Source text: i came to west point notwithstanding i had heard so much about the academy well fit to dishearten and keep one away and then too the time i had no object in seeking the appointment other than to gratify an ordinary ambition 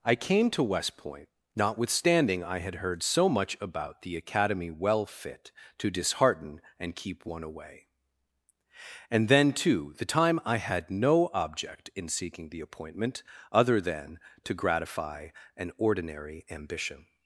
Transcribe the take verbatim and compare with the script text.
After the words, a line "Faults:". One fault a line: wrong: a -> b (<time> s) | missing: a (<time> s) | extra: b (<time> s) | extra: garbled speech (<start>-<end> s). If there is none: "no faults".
i came to west point notwithstanding i had heard so much about the academy well fit to dishearten and keep one away and then too the time i had no object in seeking the appointment other than to gratify an ordinary ambition
Faults:
no faults